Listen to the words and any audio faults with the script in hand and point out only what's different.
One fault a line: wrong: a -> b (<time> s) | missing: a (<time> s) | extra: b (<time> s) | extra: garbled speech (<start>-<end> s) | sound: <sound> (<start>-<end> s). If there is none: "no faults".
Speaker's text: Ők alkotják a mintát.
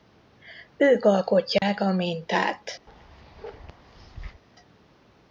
sound: dropout (1.6-1.6 s)
sound: bark (2.9-4.4 s)